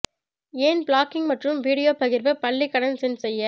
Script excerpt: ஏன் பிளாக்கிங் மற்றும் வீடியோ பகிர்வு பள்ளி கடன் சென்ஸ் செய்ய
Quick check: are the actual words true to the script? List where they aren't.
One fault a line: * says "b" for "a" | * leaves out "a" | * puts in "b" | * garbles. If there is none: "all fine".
all fine